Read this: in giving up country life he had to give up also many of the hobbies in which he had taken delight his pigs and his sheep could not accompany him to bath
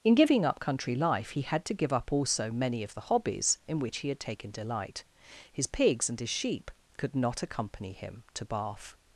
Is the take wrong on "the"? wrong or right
right